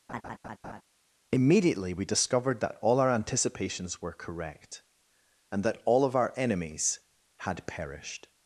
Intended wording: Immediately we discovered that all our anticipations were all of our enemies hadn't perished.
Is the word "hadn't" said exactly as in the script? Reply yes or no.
no